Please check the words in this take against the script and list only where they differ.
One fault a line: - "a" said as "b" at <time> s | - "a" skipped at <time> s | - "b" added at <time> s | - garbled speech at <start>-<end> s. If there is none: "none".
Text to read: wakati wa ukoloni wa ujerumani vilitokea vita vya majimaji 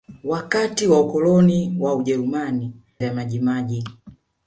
- "vilitokea vita" skipped at 2.7 s